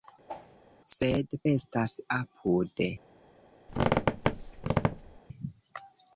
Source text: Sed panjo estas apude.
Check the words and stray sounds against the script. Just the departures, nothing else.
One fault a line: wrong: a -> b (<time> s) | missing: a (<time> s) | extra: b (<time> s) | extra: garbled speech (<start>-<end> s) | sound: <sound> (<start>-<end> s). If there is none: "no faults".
sound: whoosh (0.3-0.6 s)
missing: panjo (1.3 s)
sound: squeak (3.7-5.2 s)